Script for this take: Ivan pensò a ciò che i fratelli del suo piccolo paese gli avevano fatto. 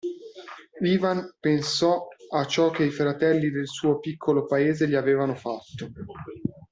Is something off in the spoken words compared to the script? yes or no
no